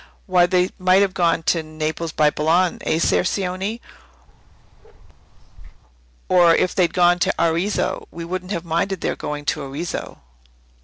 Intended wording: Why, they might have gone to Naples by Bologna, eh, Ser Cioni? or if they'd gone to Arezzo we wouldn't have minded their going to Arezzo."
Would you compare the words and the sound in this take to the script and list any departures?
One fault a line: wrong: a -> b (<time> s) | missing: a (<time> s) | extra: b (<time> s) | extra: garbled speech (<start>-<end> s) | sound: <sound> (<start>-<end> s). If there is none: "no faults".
sound: bark (4.3-5.8 s)